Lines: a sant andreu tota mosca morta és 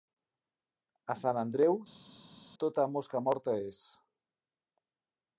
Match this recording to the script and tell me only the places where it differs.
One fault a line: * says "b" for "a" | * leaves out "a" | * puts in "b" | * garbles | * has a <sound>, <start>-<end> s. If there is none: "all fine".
all fine